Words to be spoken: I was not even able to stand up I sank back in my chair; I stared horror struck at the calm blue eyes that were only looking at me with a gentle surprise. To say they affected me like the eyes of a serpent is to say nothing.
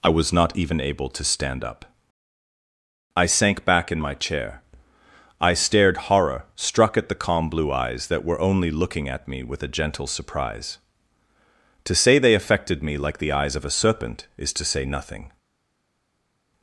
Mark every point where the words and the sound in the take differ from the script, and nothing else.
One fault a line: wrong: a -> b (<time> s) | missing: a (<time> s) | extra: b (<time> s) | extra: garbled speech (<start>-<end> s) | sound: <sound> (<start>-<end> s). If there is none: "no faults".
no faults